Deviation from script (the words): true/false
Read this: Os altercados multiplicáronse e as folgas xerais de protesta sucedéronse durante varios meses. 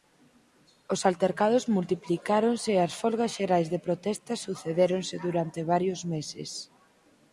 false